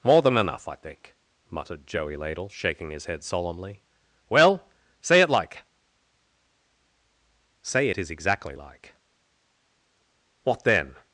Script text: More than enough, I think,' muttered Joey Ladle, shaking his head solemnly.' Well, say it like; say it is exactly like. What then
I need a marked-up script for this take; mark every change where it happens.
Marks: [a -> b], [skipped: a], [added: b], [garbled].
More than enough, I think,' muttered Joey Ladle, shaking his head solemnly.' Well, say it like; say it is exactly like. What then